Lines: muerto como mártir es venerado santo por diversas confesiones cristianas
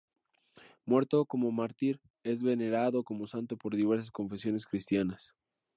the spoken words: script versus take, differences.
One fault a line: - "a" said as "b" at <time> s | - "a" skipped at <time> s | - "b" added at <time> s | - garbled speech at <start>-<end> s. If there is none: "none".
- "como" added at 3.0 s